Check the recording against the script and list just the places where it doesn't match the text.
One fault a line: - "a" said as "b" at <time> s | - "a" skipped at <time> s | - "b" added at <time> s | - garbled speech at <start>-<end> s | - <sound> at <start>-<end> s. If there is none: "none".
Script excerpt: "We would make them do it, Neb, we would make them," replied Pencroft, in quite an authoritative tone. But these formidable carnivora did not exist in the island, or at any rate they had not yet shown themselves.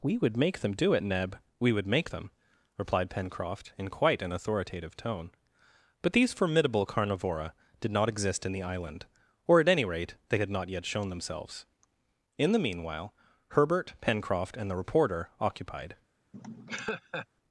- "In the meanwhile Herbert Pencroft and the reporter occupied" added at 12.4 s
- laugh at 16.3-17.3 s